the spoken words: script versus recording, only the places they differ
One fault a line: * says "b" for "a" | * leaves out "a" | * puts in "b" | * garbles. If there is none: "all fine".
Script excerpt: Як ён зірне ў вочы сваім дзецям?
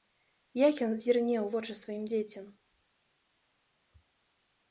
all fine